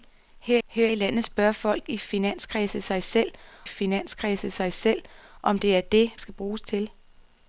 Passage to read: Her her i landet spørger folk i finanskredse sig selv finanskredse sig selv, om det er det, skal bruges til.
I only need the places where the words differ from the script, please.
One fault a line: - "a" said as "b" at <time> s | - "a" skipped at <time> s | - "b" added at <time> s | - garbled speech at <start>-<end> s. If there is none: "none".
none